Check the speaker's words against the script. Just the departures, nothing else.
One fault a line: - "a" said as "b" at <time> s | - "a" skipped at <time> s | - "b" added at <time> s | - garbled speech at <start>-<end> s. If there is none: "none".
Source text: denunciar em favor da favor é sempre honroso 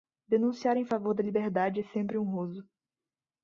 - "favor" said as "liberdade" at 1.2 s